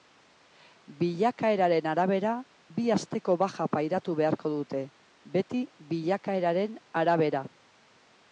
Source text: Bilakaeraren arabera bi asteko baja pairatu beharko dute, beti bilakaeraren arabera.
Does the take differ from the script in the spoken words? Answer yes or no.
no